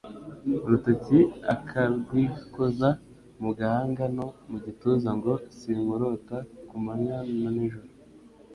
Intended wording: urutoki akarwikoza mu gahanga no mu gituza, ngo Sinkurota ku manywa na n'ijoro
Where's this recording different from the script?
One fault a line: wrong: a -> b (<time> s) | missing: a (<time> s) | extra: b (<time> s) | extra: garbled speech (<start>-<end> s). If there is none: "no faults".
no faults